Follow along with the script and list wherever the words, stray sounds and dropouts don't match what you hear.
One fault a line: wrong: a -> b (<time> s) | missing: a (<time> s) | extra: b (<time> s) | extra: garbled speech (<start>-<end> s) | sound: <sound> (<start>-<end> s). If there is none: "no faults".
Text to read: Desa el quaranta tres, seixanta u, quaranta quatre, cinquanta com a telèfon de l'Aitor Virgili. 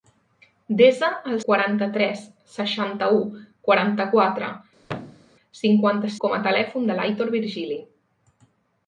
sound: thud (4.8-5.3 s)